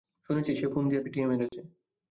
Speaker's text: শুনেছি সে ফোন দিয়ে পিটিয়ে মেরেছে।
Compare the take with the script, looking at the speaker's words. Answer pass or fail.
pass